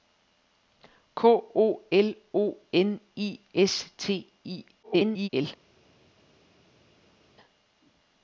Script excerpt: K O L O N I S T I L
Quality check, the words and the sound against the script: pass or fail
fail